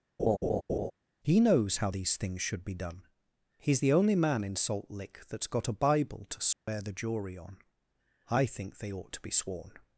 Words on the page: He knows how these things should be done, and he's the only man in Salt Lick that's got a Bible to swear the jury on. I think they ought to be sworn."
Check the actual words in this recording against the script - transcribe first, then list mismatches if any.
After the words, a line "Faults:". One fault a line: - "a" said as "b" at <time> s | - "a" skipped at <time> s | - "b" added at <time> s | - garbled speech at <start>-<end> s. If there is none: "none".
He knows how these things should be done, he's the only man in Salt Lick that's got a Bible to swear the jury on. I think they ought to be sworn."
Faults:
- "and" skipped at 3.1 s